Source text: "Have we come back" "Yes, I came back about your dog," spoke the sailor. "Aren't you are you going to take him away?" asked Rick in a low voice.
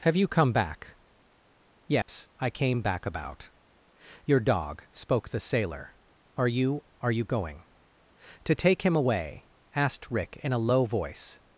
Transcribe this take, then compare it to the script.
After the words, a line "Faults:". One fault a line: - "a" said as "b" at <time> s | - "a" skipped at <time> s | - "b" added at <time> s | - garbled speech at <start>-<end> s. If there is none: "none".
"Have you come back" "Yes, I came back about your dog," spoke the sailor. "Are you are you going to take him away?" asked Rick in a low voice.
Faults:
- "we" said as "you" at 0.1 s
- "Aren't" said as "Are" at 6.3 s